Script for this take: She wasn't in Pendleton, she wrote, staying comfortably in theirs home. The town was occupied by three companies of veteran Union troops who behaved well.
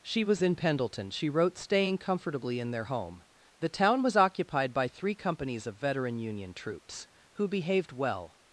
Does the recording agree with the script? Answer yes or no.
no